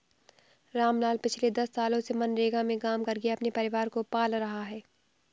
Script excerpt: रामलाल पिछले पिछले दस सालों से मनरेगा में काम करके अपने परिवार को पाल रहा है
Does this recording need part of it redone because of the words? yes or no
yes